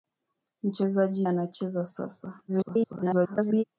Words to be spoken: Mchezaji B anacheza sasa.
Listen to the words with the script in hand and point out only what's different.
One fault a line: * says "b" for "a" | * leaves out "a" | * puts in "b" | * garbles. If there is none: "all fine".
* leaves out "B"
* garbles